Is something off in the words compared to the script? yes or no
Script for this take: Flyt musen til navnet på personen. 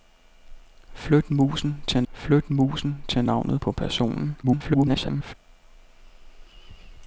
yes